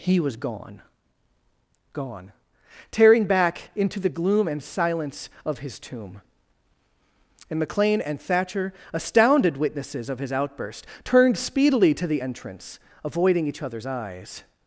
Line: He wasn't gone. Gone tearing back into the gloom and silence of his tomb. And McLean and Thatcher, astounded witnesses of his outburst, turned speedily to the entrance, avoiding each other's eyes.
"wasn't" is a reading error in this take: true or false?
true